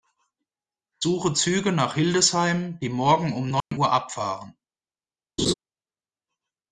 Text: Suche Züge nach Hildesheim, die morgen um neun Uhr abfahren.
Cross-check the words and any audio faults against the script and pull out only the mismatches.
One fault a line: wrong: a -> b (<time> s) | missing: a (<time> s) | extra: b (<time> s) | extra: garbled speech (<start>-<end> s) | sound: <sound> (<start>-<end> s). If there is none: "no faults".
sound: dropout (3.6-3.7 s)
sound: laugh (5.4-5.5 s)